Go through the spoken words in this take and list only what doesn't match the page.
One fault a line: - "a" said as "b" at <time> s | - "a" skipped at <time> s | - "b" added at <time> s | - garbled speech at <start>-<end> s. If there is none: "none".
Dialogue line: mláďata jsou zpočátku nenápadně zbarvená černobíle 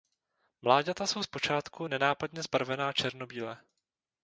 none